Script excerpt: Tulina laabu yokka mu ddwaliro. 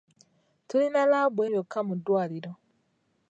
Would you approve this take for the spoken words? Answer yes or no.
yes